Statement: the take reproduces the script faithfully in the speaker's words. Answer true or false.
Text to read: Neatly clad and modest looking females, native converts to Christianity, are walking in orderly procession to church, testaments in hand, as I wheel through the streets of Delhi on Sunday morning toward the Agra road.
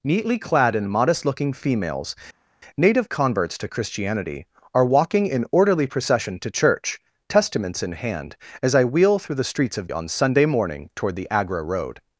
false